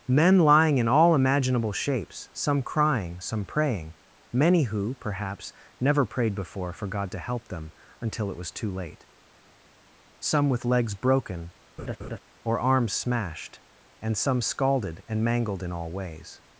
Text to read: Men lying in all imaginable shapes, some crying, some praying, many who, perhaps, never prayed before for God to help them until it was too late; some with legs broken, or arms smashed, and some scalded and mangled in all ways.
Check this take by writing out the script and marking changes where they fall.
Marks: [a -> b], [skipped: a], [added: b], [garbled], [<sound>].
Men lying in all imaginable shapes, some crying, some praying, many who, perhaps, never prayed before for God to help them until it was too late; some with legs broken, [laugh] or arms smashed, and some scalded and mangled in all ways.